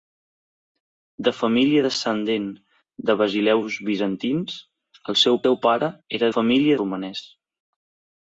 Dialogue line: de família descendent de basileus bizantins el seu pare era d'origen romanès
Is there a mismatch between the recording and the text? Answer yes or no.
yes